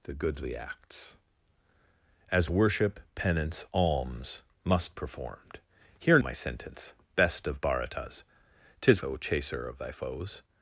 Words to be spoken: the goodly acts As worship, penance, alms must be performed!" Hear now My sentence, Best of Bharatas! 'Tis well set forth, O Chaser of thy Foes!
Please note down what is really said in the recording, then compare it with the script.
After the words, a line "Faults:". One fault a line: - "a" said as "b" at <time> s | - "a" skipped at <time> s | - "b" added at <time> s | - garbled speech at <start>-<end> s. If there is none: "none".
the goodly acts As worship, penance, alms must performed!" Hear My sentence, Best of Bharatas! 'Tis O Chaser of thy Foes!
Faults:
- "be" skipped at 5.0 s
- "now" skipped at 6.2 s
- "well set forth" skipped at 9.0 s